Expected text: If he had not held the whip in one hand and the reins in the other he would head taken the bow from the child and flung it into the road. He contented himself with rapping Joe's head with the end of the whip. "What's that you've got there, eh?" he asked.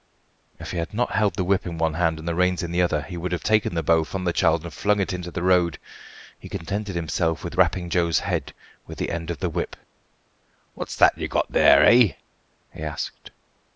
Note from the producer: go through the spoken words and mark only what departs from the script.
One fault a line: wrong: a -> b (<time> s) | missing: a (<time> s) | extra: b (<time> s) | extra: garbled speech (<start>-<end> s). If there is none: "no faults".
wrong: head -> have (3.3 s)